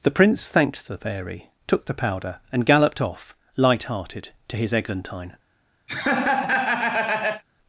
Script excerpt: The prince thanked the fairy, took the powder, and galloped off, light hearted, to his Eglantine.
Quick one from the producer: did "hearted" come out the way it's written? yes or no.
yes